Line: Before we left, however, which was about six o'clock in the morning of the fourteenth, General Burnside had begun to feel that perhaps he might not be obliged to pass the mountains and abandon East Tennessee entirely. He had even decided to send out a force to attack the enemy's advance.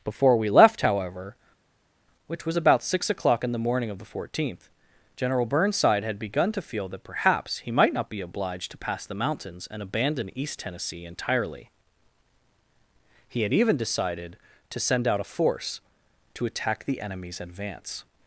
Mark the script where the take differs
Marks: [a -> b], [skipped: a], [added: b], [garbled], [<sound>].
Before we left, however, which was about six o'clock in the morning of the fourteenth, General Burnside had begun to feel that perhaps he might not be obliged to pass the mountains and abandon East Tennessee entirely. He had even decided to send out a force to attack the enemy's advance.